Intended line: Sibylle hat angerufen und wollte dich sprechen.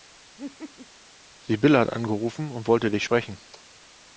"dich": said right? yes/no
yes